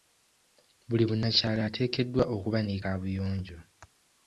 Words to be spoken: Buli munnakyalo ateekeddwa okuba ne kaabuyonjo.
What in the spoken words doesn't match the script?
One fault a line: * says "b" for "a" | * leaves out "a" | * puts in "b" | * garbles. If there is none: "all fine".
all fine